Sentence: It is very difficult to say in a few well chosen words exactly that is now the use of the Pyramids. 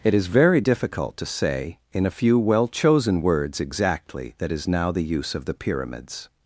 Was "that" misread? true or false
false